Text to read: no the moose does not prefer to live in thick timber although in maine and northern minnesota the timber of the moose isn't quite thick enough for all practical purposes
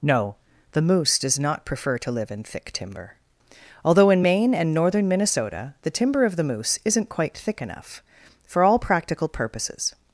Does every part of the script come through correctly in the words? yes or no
yes